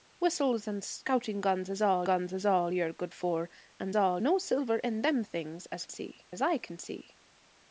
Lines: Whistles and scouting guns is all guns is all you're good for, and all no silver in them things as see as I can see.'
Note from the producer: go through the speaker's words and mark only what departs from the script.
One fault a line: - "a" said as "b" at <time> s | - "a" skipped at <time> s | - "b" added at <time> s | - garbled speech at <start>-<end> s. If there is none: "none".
none